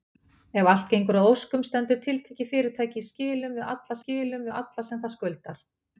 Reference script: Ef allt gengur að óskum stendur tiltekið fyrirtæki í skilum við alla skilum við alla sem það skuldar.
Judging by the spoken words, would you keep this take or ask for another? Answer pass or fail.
pass